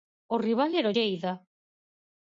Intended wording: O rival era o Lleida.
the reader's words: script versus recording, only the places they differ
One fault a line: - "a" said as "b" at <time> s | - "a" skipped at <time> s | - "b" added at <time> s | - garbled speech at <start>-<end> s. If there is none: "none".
none